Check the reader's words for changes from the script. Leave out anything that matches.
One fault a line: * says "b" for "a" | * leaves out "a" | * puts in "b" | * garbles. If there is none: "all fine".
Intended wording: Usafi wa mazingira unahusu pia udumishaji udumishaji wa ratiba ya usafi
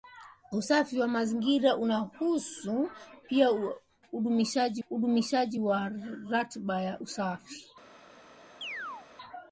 all fine